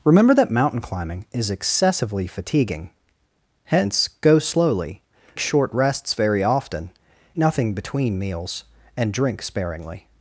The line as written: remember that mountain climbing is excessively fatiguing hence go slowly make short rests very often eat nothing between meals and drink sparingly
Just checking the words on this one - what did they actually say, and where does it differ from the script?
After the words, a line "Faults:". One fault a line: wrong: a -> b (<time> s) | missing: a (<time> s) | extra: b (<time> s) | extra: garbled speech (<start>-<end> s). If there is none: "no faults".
remember that mountain climbing is excessively fatiguing hence go slowly short rests very often nothing between meals and drink sparingly
Faults:
missing: make (5.0 s)
missing: eat (6.9 s)